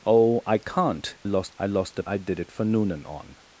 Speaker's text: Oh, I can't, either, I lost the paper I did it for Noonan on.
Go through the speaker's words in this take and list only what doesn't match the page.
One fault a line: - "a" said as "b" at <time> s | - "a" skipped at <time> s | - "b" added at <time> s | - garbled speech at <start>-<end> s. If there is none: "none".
- "either" said as "lost" at 1.2 s
- "paper" skipped at 2.0 s